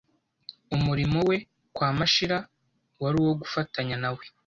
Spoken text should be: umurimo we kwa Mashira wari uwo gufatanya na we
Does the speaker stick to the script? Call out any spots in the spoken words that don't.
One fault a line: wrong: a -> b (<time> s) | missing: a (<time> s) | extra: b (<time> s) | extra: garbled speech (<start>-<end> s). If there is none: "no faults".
no faults